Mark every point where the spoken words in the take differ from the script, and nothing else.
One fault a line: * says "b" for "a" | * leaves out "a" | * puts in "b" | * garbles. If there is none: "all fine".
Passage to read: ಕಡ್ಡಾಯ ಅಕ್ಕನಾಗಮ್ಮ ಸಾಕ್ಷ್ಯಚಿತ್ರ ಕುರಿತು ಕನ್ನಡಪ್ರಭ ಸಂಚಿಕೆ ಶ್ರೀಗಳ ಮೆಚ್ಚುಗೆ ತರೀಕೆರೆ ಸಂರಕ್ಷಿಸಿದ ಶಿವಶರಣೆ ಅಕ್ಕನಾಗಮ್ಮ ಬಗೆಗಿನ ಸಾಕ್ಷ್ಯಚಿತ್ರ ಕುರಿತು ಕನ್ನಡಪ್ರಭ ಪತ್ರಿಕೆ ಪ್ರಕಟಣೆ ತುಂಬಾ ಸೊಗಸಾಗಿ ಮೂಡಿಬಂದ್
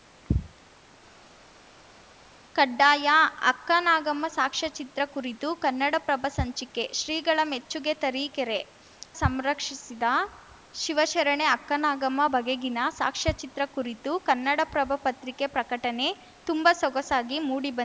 all fine